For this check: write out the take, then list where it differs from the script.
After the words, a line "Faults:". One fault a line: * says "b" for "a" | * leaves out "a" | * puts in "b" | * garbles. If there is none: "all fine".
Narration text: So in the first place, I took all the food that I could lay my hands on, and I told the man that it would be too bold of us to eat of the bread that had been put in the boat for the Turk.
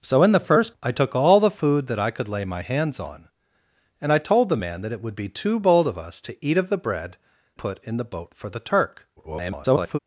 So in the first I took all the food that I could lay my hands on, and I told the man that it would be too bold of us to eat of the bread put in the boat for the Turk. [garbled]
Faults:
* leaves out "place"
* leaves out "that had been"
* garbles